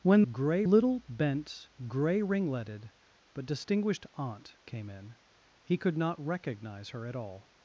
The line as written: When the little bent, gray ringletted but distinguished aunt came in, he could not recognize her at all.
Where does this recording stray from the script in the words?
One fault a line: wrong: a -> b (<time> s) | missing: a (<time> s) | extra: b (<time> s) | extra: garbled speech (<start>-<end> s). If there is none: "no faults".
wrong: the -> gray (0.3 s)